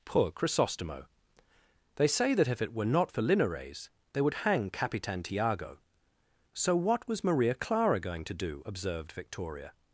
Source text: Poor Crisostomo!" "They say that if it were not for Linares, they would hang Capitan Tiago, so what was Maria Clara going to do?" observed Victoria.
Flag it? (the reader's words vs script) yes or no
no